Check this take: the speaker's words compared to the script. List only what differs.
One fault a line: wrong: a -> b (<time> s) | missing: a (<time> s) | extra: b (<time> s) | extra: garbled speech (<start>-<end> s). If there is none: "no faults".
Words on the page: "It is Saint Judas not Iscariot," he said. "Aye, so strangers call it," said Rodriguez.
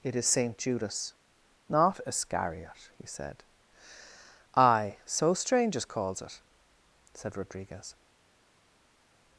wrong: call -> calls (5.8 s)